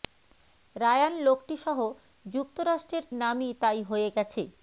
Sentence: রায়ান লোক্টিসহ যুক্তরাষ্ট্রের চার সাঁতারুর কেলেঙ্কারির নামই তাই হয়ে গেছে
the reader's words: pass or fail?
fail